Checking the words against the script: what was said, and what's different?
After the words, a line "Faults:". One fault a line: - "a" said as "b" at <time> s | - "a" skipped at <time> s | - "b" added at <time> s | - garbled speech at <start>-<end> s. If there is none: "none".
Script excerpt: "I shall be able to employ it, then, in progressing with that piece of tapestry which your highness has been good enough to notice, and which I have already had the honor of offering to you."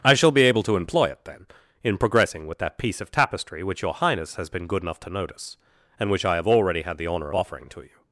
"I shall be able to employ it, then, in progressing with that piece of tapestry which your highness has been good enough to notice, and which I have already had the honor offering to you."
Faults:
- "of" skipped at 7.3 s